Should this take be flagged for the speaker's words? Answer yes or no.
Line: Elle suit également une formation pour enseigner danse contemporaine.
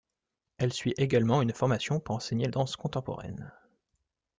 no